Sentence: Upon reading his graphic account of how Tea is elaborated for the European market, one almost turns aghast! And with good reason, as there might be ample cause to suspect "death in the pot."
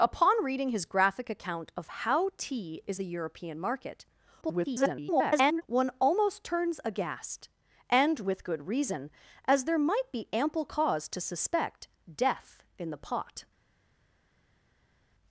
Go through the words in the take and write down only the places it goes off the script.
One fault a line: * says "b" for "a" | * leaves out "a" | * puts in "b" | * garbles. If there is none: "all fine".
* leaves out "elaborated for"
* garbles